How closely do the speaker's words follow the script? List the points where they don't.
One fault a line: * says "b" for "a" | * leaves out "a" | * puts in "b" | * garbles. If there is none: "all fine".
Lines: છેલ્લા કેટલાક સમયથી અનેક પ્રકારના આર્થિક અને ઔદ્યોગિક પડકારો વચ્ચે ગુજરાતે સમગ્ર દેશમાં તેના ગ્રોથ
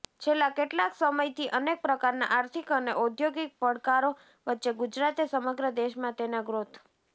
all fine